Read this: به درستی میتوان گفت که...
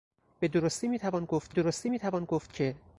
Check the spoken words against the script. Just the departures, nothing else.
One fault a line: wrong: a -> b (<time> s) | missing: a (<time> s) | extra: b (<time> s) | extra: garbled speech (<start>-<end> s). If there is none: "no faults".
extra: درستی میتوان گفت (1.5 s)